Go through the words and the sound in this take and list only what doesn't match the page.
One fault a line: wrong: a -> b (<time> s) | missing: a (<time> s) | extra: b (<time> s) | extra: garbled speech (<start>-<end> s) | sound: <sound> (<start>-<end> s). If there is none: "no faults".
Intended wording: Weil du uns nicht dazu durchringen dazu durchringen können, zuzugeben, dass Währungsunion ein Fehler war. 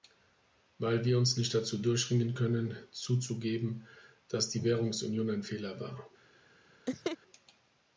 wrong: du -> wir (1.1 s)
missing: dazu durchringen (2.3 s)
extra: die (4.5 s)
sound: laugh (6.9-7.2 s)